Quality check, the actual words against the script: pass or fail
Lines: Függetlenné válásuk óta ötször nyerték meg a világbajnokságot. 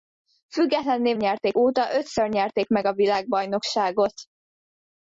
fail